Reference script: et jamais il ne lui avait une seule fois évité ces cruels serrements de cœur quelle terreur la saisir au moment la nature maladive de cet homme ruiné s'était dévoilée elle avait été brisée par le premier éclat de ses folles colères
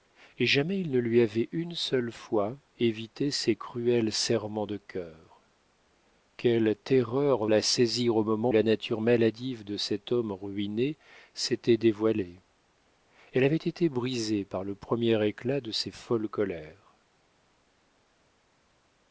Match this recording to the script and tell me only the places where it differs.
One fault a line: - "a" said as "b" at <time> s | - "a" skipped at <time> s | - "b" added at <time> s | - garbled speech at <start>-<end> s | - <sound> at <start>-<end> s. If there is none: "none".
none